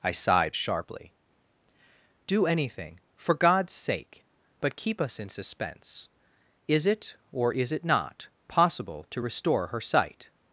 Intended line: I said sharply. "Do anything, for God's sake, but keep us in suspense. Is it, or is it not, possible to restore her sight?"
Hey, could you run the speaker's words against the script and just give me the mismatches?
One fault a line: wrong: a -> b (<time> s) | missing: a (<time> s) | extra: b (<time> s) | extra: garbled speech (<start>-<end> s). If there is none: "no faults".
wrong: said -> sighed (0.1 s)